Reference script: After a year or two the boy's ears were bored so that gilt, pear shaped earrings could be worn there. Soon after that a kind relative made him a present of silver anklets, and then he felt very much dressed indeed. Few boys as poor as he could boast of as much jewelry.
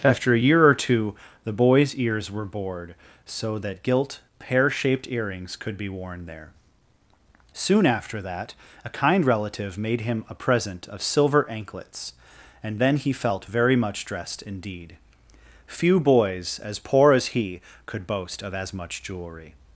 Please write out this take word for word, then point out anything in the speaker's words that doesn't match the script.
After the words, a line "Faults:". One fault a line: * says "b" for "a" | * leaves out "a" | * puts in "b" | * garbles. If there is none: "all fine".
After a year or two the boy's ears were bored so that gilt, pear shaped earrings could be worn there. Soon after that a kind relative made him a present of silver anklets, and then he felt very much dressed indeed. Few boys as poor as he could boast of as much jewelry.
Faults:
all fine